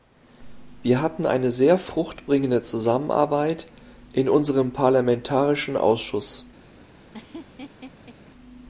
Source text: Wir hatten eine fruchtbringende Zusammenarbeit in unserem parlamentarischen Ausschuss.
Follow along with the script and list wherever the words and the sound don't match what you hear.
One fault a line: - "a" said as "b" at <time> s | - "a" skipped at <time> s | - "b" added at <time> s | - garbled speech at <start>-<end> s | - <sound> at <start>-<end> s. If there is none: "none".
- "sehr" added at 1.5 s
- laugh at 7.1-8.2 s